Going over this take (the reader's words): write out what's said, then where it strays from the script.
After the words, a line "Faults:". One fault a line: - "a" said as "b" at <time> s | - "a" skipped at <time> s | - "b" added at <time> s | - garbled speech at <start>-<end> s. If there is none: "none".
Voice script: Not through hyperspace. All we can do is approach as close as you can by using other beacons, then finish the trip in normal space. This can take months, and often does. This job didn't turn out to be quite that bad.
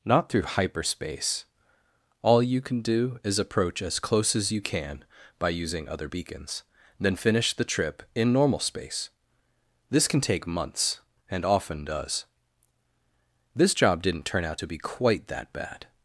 Not through hyperspace. All you can do is approach as close as you can by using other beacons, then finish the trip in normal space. This can take months, and often does. This job didn't turn out to be quite that bad.
Faults:
- "we" said as "you" at 2.4 s